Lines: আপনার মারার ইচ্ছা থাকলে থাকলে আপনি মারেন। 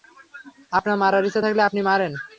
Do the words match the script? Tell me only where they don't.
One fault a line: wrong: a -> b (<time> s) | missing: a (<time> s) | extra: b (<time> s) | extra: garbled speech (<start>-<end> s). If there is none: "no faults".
missing: থাকলে (1.6 s)